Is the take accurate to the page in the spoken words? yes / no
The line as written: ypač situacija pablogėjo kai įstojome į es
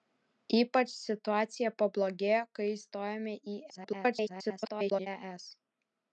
no